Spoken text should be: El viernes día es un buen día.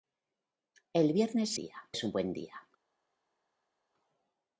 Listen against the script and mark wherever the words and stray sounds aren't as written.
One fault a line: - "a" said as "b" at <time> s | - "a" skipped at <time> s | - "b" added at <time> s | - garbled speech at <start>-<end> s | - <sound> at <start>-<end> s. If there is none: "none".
none